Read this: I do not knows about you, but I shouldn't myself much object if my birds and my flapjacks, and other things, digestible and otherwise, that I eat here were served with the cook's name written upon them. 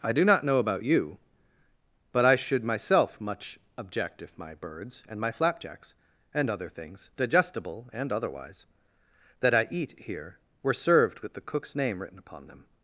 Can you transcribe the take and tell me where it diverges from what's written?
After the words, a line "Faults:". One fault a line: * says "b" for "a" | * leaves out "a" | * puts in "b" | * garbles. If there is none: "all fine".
I do not know about you, but I should myself much object if my birds and my flapjacks, and other things, digestible and otherwise, that I eat here were served with the cook's name written upon them.
Faults:
* says "know" for "knows"
* says "should" for "shouldn't"